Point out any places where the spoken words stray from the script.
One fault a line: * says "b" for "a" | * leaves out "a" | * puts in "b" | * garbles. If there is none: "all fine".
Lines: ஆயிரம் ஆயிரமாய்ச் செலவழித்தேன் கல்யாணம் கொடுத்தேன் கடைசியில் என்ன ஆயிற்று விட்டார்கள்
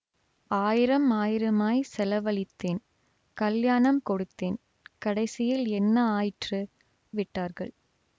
all fine